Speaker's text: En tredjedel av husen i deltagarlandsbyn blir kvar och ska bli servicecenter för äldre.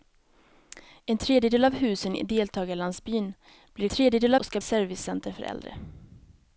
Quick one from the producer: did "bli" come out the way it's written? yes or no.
no